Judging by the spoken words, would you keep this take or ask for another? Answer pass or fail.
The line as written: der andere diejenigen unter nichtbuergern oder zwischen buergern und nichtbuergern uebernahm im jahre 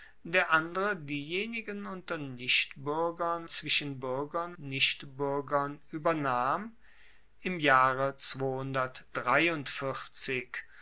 fail